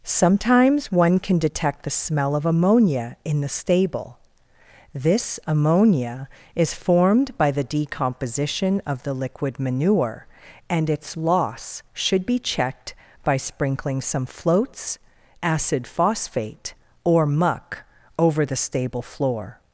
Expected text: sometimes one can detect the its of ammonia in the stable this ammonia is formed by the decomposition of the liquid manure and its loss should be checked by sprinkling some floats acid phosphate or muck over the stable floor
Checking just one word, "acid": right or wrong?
right